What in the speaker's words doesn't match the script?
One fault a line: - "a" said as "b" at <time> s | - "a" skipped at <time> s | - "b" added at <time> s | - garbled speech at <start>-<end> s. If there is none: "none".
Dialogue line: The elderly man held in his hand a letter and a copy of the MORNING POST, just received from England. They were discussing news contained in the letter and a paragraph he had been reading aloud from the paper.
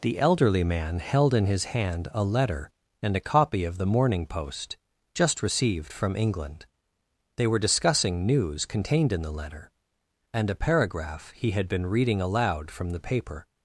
none